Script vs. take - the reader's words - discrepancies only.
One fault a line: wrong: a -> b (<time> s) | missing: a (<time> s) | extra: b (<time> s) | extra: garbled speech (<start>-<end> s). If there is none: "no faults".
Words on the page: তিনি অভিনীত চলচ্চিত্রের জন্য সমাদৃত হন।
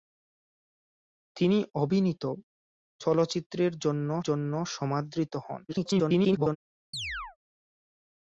extra: জন্য (4.2 s)
extra: garbled speech (5.7-6.6 s)